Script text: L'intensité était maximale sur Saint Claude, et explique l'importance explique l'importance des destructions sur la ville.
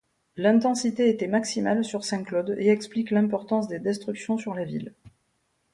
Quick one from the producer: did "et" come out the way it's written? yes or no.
yes